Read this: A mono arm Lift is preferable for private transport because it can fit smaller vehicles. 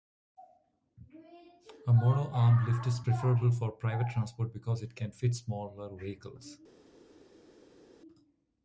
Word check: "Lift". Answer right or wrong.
right